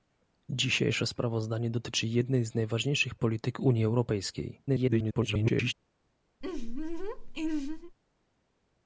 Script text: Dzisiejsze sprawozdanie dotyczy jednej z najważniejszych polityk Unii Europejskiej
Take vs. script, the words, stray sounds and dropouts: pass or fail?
fail